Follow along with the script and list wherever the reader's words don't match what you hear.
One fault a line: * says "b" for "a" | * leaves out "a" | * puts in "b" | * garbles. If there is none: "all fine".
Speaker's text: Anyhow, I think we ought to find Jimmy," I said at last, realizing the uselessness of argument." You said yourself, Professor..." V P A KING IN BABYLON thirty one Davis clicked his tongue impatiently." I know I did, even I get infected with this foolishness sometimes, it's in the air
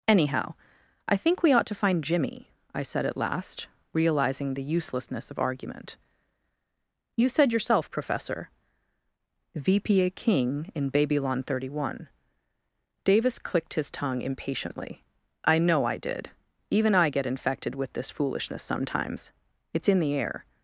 all fine